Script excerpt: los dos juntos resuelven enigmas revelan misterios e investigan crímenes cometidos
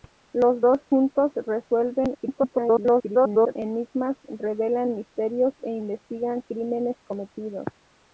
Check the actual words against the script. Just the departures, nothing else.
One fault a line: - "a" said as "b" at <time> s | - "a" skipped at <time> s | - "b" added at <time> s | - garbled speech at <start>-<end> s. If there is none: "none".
- garbled speech at 2.1-3.6 s